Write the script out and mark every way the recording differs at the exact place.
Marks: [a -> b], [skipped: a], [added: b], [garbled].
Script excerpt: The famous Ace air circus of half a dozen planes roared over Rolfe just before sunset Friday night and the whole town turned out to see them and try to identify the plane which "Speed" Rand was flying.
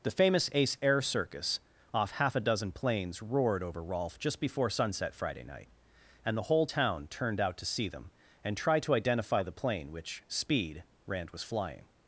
The famous Ace air circus [of -> off] half a dozen planes roared over Rolfe just before sunset Friday night and the whole town turned out to see them and try to identify the plane which "Speed" Rand was flying.